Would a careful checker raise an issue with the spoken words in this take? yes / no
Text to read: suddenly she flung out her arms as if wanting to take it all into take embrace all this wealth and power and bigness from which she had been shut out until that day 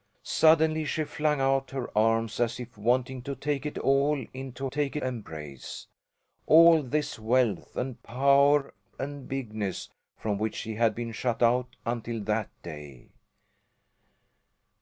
no